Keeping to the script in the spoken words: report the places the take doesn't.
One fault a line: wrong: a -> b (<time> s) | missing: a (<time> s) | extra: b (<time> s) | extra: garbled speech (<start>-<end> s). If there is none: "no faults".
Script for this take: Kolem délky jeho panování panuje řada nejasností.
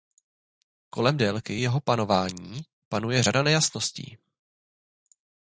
no faults